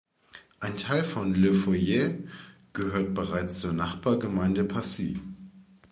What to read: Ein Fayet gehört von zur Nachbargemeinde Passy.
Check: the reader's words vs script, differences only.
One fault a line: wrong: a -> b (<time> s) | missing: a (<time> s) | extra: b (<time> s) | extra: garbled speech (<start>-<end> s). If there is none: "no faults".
extra: Teil von Le (0.8 s)
wrong: von -> bereits (3.1 s)